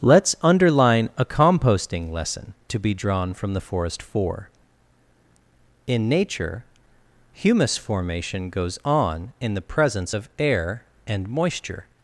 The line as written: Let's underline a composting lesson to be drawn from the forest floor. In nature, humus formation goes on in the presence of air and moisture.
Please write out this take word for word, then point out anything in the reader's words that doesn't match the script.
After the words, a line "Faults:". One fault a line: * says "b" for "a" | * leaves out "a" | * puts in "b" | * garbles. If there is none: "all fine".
Let's underline a composting lesson to be drawn from the forest four. In nature, humus formation goes on in the presence of air and moisture.
Faults:
* says "four" for "floor"